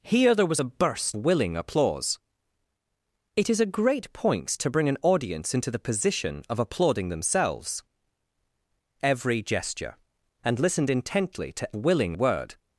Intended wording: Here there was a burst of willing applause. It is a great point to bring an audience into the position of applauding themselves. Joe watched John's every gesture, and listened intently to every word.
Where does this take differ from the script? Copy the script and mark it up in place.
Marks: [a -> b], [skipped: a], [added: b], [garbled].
Here there was a burst [skipped: of] willing applause. It is a great point to bring an audience into the position of applauding themselves. [skipped: Joe watched John's] every gesture, and listened intently to [every -> willing] word.